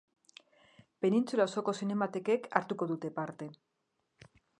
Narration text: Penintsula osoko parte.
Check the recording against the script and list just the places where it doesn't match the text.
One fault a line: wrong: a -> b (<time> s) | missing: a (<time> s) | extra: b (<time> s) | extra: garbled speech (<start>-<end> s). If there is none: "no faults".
extra: zinematekek hartuko dute (1.8 s)